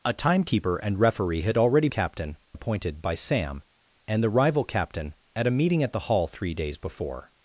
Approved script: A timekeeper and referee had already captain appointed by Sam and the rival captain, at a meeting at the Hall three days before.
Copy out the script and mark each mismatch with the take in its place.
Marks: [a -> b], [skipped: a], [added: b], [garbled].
A timekeeper and referee had already captain appointed by Sam and the rival captain, at a meeting at the Hall three days before.